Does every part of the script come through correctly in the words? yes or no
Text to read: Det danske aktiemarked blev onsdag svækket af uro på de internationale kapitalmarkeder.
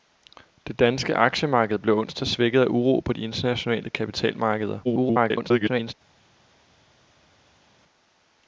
no